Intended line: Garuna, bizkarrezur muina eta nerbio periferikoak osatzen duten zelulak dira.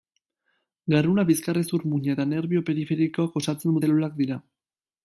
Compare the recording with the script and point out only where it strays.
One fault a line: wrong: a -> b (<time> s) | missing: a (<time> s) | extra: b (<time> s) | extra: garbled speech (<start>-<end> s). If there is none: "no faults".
missing: duten (3.8 s)